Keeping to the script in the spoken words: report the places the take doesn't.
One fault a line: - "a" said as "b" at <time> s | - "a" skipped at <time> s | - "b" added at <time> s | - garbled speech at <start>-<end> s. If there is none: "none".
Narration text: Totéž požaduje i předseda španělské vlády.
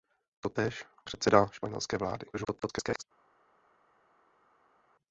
- "požaduje i" skipped at 0.8 s
- garbled speech at 2.3-3.0 s